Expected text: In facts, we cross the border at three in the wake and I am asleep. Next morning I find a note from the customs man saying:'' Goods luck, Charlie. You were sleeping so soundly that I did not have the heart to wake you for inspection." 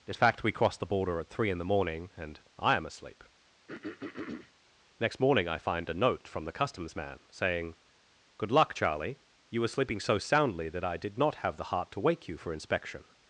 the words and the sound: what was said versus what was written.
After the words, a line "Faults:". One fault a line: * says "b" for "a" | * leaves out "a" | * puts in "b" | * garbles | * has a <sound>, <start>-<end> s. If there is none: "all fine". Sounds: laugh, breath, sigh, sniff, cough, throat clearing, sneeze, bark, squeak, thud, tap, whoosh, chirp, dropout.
In fact, we cross the border at three in the morning and I am asleep. Next morning I find a note from the customs man saying:'' Good luck, Charlie. You were sleeping so soundly that I did not have the heart to wake you for inspection."
Faults:
* says "fact" for "facts"
* says "morning" for "wake"
* has a throat clearing, 3.7-4.5 s
* says "Good" for "Goods"